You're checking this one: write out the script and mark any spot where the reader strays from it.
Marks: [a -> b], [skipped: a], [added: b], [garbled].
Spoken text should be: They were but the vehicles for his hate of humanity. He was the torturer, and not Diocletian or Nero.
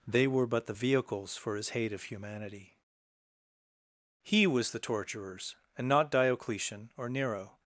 They were but the vehicles for his hate of humanity. He was the [torturer, -> torturers] and not Diocletian or Nero.